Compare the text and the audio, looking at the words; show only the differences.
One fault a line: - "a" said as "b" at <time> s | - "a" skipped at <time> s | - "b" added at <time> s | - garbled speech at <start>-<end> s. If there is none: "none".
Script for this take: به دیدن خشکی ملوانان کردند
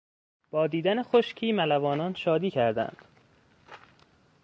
- "به" said as "با" at 0.5 s
- "شادی" added at 2.1 s